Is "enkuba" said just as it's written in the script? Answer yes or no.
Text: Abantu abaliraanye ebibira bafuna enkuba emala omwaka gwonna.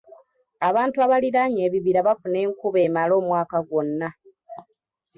yes